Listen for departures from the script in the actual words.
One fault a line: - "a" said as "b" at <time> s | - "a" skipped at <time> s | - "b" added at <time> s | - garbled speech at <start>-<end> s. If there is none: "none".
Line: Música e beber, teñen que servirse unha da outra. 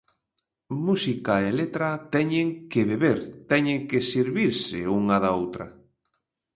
- "letra teñen que" added at 1.6 s